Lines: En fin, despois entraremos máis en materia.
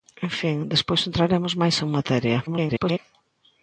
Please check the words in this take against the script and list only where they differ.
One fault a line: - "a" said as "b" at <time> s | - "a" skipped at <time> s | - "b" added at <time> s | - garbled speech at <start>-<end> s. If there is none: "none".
- garbled speech at 2.5-3.0 s